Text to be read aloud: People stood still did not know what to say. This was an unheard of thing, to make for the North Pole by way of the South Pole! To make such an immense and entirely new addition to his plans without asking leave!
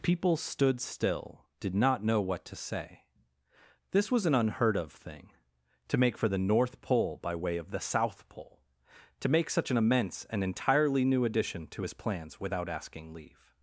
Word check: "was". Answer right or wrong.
right